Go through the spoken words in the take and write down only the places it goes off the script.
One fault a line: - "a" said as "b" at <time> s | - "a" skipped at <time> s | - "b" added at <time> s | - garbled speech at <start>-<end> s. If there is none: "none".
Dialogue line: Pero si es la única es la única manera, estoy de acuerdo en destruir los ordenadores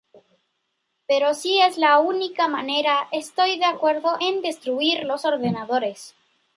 - "es la única" skipped at 2.5 s